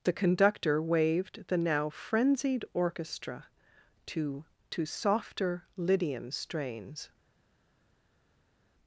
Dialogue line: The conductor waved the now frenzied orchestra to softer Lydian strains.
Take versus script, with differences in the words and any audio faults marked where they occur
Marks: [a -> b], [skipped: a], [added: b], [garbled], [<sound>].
The conductor waved the now frenzied orchestra to [added: to] softer Lydian strains.